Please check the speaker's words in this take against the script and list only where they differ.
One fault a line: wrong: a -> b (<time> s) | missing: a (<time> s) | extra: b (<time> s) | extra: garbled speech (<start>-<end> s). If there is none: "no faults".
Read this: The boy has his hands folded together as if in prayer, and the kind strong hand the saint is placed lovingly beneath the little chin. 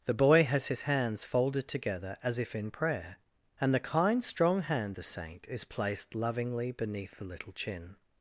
no faults